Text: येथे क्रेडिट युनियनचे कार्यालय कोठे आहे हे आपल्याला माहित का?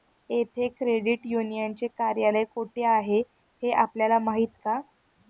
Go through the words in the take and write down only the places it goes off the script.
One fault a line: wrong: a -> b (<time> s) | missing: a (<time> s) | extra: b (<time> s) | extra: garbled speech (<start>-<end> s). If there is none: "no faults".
no faults